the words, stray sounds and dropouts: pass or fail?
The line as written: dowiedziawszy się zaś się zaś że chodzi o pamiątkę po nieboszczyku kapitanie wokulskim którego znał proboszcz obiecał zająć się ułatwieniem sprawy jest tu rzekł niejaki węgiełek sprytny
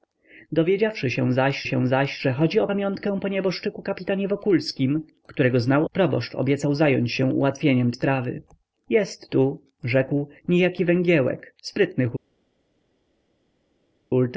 pass